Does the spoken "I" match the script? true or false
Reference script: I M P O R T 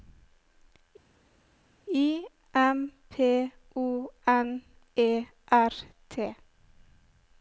true